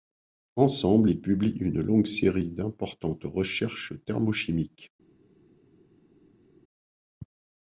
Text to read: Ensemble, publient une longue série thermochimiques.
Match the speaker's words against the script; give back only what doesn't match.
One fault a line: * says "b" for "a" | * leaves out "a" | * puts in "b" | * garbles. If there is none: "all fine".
* puts in "ils"
* puts in "d'importantes recherches"